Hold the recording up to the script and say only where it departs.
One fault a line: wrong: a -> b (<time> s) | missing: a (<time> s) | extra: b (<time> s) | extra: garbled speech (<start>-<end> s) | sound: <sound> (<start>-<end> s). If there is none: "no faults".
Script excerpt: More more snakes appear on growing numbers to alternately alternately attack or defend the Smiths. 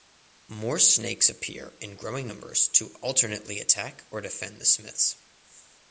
missing: more (0.8 s)
wrong: on -> in (1.8 s)
missing: alternately (3.6 s)